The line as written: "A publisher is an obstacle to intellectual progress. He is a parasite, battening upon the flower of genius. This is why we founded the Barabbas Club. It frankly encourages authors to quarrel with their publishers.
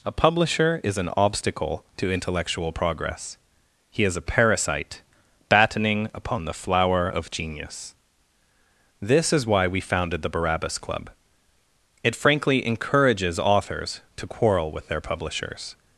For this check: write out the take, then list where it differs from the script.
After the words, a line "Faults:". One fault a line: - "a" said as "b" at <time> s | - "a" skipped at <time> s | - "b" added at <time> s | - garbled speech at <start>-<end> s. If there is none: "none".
"A publisher is an obstacle to intellectual progress. He is a parasite, battening upon the flower of genius. This is why we founded the Barabbas Club. It frankly encourages authors to quarrel with their publishers.
Faults:
none